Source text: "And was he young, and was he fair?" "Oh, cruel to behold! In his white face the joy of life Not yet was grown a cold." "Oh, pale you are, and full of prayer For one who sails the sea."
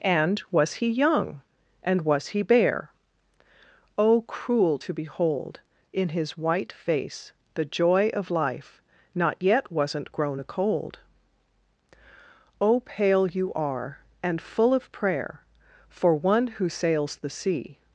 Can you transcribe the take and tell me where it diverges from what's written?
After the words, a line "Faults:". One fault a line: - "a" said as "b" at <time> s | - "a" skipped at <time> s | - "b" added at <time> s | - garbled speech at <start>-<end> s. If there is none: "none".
"And was he young, and was he bare?" "Oh, cruel to behold! In his white face the joy of life Not yet wasn't grown a cold." "Oh, pale you are, and full of prayer For one who sails the sea."
Faults:
- "fair" said as "bare" at 2.4 s
- "was" said as "wasn't" at 9.7 s